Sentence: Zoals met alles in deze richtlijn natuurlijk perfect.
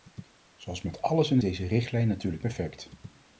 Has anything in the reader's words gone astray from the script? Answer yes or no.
no